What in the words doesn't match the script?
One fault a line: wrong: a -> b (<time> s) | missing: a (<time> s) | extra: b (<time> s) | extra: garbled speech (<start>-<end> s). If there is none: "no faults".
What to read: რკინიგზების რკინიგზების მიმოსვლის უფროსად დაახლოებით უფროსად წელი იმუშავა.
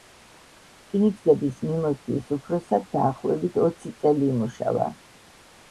missing: რკინიგზების (1.6 s)
wrong: უფროსად -> ოცი (3.7 s)